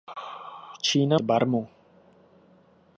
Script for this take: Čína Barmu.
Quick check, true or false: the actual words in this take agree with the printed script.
true